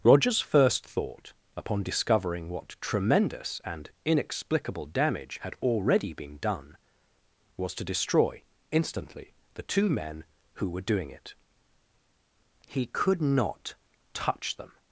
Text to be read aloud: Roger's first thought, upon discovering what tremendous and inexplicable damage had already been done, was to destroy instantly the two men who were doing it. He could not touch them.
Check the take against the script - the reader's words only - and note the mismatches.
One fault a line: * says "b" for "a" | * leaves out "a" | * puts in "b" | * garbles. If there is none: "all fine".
all fine